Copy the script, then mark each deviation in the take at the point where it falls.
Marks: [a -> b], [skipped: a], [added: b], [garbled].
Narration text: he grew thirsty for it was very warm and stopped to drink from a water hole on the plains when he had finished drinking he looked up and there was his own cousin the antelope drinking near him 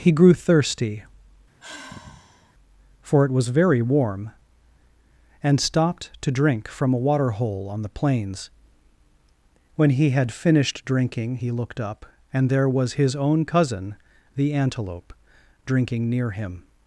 he grew thirsty for it was very warm and stopped to drink from a water hole on the plains when he had finished drinking he looked up and there was his own cousin the antelope drinking near him